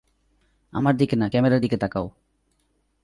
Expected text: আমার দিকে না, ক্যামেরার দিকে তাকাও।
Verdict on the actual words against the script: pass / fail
pass